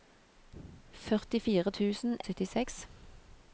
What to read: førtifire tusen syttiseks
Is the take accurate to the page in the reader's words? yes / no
yes